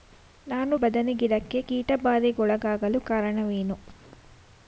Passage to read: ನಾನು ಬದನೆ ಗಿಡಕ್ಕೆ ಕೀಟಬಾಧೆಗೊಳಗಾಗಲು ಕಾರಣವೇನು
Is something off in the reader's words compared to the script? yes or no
no